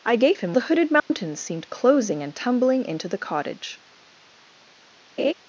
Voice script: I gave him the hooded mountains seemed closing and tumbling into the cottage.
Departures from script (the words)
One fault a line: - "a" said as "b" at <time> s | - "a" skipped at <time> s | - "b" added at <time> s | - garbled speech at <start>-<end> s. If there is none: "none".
none